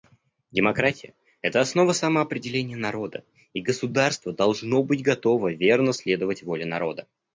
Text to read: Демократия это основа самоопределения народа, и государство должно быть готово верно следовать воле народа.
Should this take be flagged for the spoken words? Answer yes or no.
no